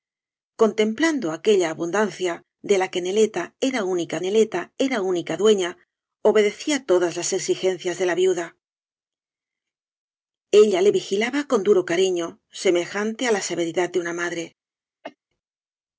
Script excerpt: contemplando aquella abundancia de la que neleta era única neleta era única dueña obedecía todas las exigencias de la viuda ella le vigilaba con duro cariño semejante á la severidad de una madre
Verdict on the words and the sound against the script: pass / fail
fail